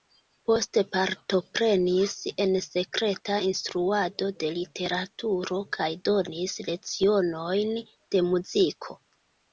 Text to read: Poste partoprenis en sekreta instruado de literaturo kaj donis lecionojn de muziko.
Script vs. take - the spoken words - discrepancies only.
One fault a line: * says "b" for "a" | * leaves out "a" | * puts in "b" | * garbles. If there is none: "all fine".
all fine